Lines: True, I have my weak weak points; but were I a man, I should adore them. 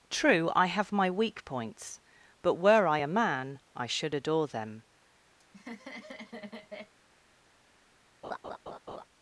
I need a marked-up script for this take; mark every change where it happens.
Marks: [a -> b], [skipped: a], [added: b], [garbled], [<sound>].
True, I have my weak [skipped: weak] points; but were I a man, I should adore them. [laugh] [laugh]